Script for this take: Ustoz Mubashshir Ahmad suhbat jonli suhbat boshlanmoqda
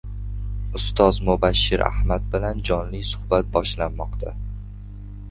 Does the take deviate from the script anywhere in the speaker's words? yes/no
yes